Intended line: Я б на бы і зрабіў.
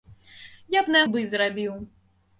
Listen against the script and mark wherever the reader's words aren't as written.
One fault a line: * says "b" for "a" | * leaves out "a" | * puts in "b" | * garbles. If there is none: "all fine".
all fine